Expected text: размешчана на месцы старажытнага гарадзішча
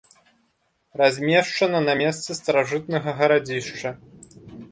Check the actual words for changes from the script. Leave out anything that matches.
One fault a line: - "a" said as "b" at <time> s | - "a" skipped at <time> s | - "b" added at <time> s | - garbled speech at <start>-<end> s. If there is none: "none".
none